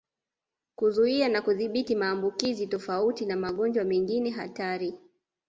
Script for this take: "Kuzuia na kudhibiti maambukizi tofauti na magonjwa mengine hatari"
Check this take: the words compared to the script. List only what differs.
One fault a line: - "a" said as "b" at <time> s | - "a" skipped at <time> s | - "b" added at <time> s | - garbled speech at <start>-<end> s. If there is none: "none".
none